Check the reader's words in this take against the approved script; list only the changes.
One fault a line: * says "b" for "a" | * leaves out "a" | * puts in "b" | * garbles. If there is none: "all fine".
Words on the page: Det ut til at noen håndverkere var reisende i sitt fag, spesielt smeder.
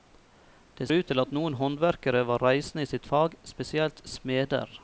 all fine